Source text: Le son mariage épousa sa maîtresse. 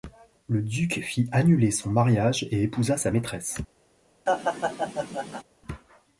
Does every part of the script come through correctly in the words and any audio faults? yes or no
no